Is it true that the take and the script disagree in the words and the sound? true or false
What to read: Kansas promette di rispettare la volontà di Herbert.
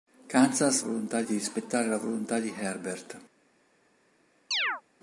true